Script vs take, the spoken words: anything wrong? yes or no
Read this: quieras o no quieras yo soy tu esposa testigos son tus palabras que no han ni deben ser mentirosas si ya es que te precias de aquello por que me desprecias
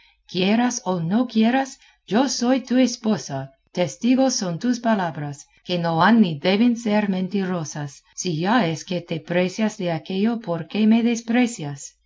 no